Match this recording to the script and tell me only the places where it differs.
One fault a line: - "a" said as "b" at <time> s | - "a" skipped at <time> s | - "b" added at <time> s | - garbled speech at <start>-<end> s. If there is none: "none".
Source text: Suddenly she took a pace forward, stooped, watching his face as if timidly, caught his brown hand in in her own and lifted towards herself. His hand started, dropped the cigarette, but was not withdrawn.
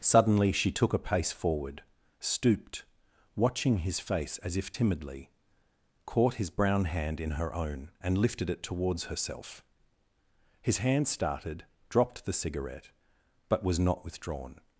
- "in" skipped at 7.3 s
- "it" added at 8.5 s